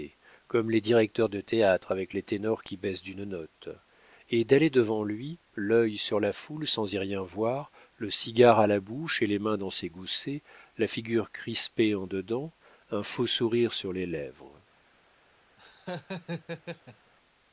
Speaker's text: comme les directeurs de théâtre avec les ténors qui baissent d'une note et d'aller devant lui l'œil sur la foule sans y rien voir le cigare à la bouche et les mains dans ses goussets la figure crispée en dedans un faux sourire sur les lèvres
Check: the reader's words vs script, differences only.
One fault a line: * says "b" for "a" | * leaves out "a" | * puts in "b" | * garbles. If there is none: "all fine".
all fine